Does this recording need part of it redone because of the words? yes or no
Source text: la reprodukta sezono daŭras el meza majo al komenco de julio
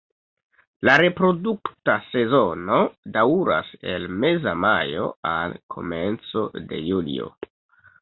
no